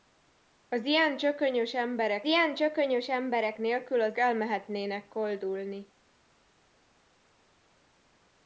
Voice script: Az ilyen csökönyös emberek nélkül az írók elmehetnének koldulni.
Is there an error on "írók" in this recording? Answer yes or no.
yes